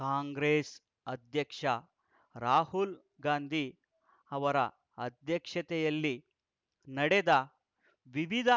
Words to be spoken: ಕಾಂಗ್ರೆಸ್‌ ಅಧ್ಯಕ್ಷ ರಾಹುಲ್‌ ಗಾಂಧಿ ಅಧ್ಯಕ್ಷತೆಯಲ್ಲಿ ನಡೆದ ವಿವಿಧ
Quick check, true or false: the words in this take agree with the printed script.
false